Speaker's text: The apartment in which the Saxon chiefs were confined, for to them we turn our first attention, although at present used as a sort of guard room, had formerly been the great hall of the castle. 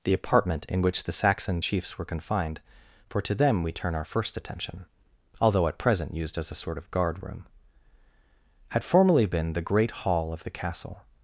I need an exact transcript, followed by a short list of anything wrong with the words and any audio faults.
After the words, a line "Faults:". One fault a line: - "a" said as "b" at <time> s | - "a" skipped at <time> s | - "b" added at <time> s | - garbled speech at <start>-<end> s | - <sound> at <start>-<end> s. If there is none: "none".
The apartment in which the Saxon chiefs were confined, for to them we turn our first attention, although at present used as a sort of guard room, had formerly been the great hall of the castle.
Faults:
none